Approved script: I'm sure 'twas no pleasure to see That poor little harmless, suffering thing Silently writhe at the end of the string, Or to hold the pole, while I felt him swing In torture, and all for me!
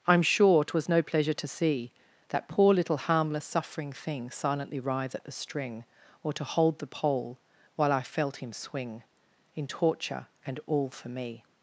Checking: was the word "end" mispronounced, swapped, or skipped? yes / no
yes